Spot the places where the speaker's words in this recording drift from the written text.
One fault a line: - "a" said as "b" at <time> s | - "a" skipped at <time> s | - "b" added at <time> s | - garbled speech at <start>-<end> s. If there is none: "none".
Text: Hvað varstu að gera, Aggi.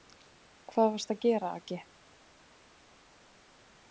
none